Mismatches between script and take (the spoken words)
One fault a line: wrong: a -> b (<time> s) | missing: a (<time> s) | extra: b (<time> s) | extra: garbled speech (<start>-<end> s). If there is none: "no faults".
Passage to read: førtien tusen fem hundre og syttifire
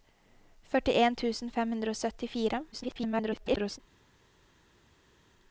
extra: garbled speech (2.7-3.8 s)